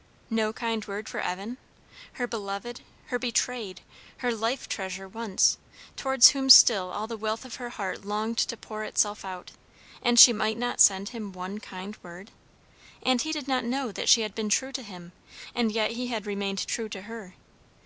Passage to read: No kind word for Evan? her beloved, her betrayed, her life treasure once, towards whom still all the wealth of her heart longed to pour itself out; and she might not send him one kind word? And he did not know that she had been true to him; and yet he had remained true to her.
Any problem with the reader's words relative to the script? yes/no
no